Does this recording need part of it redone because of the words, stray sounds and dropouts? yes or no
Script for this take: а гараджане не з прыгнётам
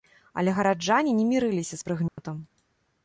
yes